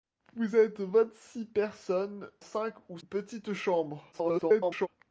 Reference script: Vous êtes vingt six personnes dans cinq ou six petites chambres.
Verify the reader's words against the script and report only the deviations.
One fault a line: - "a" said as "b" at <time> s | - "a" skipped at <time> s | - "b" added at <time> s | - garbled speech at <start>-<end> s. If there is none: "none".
- "dans" skipped at 2.3 s
- "six" skipped at 3.0 s
- garbled speech at 4.1-4.9 s